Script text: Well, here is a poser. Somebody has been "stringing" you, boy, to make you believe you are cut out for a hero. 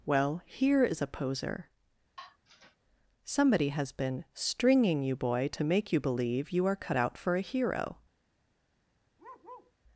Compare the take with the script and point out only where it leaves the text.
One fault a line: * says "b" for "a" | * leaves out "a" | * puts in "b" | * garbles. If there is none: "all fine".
all fine